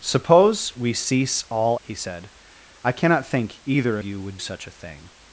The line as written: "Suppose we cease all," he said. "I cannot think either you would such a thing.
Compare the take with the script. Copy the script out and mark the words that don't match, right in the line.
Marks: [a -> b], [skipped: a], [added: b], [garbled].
"Suppose we cease all," he said. "I cannot think either you would such a thing.